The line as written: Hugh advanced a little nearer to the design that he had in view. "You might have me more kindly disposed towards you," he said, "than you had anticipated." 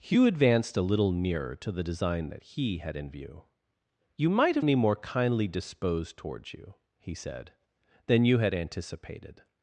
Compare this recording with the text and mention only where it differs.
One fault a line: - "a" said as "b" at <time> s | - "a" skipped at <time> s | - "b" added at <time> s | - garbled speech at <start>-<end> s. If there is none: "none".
none